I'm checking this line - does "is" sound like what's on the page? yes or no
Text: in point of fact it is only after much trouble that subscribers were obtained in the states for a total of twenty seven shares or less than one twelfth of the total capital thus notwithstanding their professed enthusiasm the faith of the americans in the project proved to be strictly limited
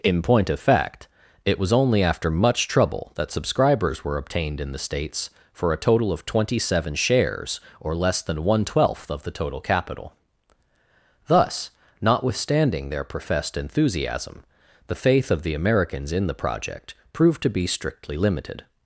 no